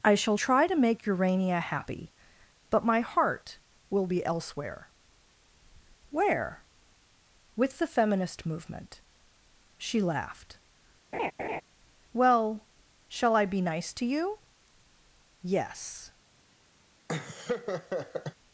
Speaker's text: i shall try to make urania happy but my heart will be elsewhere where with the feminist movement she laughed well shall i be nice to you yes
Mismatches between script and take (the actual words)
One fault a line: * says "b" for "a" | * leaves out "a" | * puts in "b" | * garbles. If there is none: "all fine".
all fine